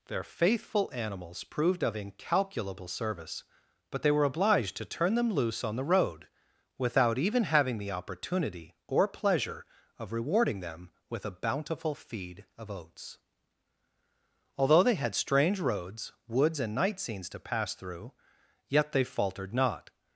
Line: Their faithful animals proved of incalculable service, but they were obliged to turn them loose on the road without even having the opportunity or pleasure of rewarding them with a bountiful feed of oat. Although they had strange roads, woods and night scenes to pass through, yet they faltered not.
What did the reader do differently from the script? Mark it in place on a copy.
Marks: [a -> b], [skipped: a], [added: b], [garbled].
Their faithful animals proved of incalculable service, but they were obliged to turn them loose on the road without even having the opportunity or pleasure of rewarding them with a bountiful feed of [oat. -> oats] Although they had strange roads, woods and night scenes to pass through, yet they faltered not.